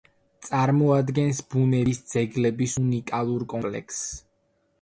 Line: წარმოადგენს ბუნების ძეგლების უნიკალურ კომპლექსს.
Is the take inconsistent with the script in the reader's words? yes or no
no